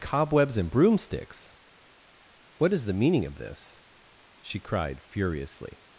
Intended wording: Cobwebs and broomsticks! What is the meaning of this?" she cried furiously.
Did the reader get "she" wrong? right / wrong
right